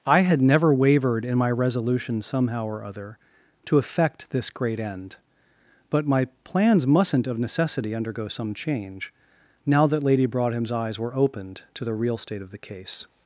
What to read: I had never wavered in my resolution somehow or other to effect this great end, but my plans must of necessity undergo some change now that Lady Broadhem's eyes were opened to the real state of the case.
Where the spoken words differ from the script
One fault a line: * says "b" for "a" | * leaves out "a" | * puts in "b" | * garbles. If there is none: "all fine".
* says "mustn't" for "must"